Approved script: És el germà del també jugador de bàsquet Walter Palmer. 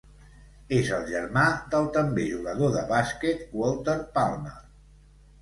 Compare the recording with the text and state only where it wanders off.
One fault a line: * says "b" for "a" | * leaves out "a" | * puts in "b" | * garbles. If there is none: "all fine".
all fine